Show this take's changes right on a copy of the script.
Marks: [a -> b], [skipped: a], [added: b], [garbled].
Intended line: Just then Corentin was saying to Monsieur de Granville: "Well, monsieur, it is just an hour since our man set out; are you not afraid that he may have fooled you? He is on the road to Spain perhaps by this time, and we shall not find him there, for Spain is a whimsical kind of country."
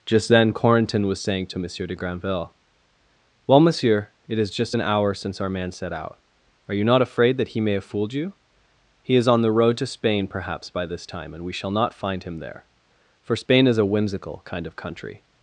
Just then Corentin was saying to Monsieur de Granville: "Well, monsieur, it is just an hour since our man set out; are you not afraid that he may have fooled you? He is on the road to Spain perhaps by this time, and we shall not find him there, for Spain is a whimsical kind of country."